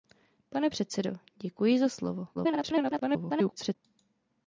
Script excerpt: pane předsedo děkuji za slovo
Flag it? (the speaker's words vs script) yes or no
yes